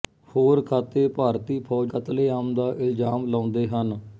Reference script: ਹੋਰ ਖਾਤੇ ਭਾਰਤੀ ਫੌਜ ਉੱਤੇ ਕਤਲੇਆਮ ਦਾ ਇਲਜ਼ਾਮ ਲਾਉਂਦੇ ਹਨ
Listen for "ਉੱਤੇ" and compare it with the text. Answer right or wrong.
wrong